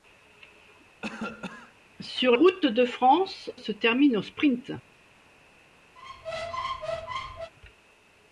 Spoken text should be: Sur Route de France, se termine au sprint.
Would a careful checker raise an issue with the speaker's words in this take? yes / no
no